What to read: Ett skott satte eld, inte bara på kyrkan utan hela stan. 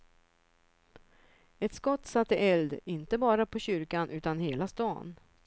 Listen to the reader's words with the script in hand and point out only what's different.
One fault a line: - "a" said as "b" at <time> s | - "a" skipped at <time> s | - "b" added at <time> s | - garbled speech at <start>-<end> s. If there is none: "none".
none